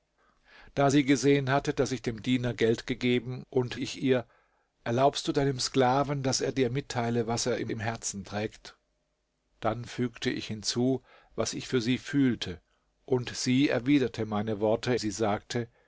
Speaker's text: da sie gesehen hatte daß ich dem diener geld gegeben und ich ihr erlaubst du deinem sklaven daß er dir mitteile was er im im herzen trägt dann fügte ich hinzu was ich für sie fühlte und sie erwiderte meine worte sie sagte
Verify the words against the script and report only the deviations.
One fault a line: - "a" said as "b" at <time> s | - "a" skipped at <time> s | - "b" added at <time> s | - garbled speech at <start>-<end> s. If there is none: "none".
none